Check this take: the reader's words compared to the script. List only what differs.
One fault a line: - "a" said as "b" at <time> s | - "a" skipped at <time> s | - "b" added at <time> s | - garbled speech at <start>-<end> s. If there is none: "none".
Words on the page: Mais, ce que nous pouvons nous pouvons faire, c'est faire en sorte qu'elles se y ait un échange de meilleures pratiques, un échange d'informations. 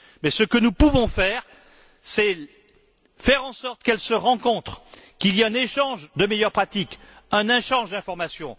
- "nous pouvons" skipped at 1.1 s
- "rencontrent qu'il" added at 4.1 s